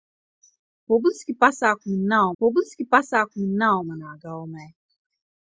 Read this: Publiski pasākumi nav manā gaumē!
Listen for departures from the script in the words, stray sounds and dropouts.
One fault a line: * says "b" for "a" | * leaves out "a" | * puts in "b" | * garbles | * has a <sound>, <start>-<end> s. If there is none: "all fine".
* puts in "publiski pasākumi nav"